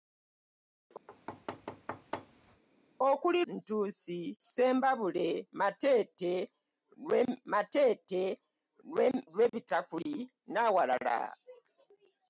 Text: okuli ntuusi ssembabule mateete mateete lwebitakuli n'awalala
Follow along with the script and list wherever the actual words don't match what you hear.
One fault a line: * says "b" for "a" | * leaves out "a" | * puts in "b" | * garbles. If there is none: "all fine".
all fine